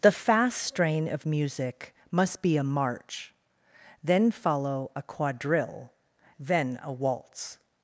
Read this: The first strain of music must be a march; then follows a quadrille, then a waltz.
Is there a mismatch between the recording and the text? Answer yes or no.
yes